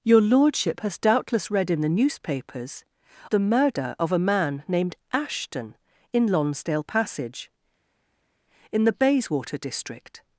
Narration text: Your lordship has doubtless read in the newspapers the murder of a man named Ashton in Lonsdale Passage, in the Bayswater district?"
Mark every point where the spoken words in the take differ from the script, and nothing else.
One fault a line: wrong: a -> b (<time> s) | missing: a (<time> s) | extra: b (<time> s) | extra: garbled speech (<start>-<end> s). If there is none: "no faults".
no faults